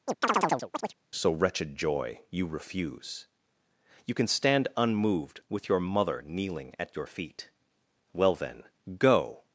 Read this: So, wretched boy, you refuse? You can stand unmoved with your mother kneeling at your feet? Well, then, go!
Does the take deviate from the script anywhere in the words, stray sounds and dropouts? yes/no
yes